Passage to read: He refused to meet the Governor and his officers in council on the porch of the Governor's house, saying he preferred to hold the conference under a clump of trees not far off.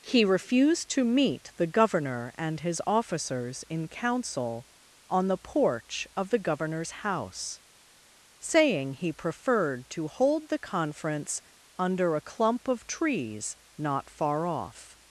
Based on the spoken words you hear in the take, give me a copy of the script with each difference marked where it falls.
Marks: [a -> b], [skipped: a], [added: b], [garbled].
He refused to meet the Governor and his officers in council on the porch of the Governor's house, saying he preferred to hold the conference under a clump of trees not far off.